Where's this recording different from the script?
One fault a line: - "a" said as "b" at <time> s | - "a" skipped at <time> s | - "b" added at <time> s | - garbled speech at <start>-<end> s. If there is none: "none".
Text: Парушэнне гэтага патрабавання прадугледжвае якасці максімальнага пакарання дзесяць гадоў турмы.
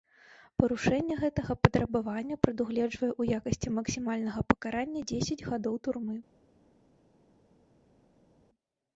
- "ў" added at 3.2 s